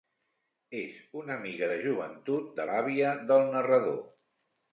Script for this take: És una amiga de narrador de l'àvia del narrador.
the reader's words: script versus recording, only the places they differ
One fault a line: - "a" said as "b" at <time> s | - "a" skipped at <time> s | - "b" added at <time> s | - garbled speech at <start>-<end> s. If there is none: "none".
- "narrador" said as "joventut" at 1.8 s